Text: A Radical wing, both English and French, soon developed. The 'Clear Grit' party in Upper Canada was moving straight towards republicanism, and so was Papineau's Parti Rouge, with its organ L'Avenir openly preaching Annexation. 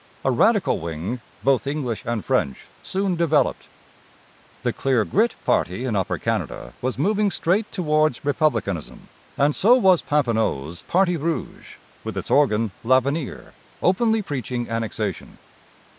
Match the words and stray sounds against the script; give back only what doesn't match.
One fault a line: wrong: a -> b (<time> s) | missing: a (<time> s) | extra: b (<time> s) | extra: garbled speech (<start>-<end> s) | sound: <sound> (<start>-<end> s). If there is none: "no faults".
no faults